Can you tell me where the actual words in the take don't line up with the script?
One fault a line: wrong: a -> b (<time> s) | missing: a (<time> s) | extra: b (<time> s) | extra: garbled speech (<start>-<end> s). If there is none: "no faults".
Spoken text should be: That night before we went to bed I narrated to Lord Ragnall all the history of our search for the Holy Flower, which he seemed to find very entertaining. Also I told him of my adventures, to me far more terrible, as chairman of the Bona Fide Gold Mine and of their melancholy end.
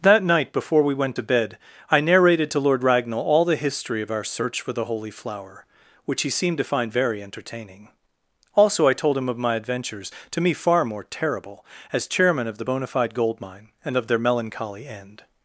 no faults